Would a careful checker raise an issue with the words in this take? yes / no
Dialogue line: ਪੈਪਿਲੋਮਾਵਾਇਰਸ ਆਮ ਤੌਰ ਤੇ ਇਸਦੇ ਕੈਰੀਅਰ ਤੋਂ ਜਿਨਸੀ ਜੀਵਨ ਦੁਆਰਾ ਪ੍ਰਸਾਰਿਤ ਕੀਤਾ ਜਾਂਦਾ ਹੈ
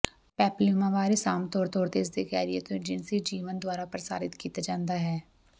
yes